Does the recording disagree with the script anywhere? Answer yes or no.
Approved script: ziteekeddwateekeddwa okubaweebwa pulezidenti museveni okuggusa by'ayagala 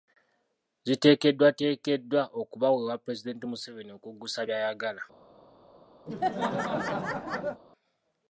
no